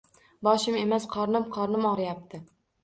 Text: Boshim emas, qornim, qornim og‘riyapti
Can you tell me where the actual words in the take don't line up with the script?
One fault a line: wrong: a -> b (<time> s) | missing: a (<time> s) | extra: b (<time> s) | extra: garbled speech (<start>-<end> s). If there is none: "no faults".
no faults